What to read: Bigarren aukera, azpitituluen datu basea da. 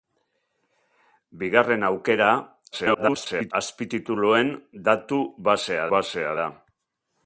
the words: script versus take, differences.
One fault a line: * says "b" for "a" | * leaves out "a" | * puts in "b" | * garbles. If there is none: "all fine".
* garbles
* puts in "basea"